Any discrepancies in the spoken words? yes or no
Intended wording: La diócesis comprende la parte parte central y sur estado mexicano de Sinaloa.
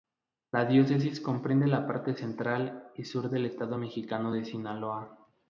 yes